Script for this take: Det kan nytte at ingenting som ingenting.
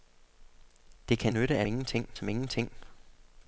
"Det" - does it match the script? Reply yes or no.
yes